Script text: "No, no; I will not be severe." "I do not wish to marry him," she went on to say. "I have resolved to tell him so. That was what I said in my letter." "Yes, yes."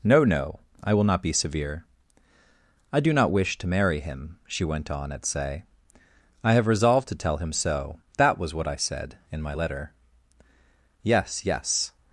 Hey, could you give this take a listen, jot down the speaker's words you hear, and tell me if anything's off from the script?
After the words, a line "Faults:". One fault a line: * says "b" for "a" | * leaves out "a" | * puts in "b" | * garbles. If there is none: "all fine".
"No, no; I will not be severe." "I do not wish to marry him," she went on at say. "I have resolved to tell him so. That was what I said in my letter." "Yes, yes."
Faults:
* says "at" for "to"